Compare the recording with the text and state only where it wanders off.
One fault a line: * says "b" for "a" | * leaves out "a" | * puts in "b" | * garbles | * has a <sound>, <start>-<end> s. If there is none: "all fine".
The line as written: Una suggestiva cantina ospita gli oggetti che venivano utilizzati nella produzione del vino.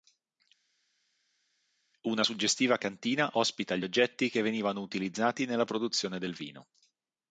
all fine